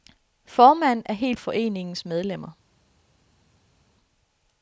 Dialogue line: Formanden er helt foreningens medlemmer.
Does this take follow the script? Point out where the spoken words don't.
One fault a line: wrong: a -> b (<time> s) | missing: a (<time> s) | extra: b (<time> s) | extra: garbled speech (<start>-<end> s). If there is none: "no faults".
no faults